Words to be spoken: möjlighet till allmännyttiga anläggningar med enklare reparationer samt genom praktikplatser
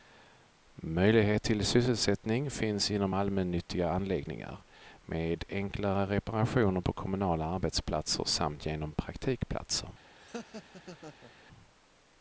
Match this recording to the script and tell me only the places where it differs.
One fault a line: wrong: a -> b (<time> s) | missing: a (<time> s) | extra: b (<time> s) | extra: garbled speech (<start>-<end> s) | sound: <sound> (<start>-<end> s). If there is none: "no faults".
extra: sysselsättning finns inom (1.6 s)
extra: på kommunala arbetsplatser (6.8 s)
sound: laugh (10.1-11.3 s)